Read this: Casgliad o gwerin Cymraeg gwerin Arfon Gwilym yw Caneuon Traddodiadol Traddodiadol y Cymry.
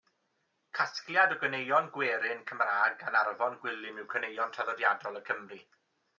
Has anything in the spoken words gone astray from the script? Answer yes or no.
yes